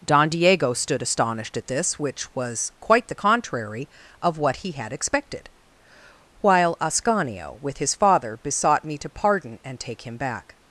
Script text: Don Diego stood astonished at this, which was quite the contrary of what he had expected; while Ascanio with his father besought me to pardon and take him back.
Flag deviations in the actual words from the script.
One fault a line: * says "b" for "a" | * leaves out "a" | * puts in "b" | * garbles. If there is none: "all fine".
all fine